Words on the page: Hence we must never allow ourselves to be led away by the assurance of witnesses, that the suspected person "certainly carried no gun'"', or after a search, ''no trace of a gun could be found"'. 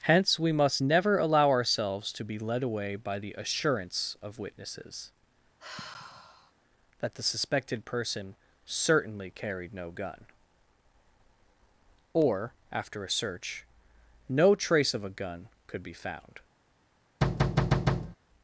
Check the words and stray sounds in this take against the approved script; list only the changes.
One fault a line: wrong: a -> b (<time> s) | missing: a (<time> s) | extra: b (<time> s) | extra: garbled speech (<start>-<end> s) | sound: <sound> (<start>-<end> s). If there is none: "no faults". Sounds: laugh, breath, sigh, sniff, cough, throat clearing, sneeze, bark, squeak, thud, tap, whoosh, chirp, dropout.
sound: sigh (5.6-6.5 s)
sound: thud (17.2-18.2 s)